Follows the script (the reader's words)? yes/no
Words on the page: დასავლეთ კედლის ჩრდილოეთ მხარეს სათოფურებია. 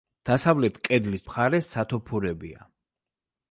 no